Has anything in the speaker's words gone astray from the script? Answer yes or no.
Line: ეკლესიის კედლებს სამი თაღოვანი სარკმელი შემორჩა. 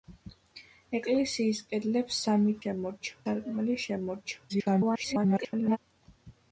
yes